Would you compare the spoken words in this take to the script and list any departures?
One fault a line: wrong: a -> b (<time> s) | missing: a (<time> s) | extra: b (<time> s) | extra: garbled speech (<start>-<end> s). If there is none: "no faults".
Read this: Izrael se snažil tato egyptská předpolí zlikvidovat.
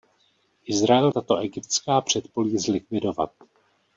missing: se snažil (1.1 s)